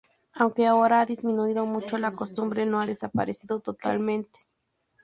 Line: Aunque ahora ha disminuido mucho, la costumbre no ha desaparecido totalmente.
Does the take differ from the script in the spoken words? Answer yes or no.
no